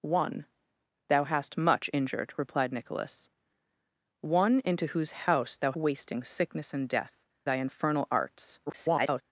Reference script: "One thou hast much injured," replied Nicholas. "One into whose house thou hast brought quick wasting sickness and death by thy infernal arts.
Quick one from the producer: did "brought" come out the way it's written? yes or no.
no